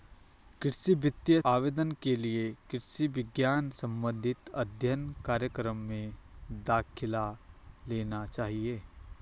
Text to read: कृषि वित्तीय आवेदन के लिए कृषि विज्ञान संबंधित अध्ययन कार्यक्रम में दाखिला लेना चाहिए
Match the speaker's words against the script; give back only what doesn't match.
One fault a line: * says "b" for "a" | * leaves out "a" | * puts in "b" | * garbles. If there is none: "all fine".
all fine